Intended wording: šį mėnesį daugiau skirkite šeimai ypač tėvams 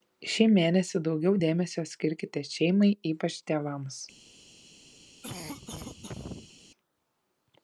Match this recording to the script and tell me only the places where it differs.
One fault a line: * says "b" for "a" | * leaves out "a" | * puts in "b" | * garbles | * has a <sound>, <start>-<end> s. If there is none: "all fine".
* puts in "dėmesio"
* has a cough, 5.2-6.5 s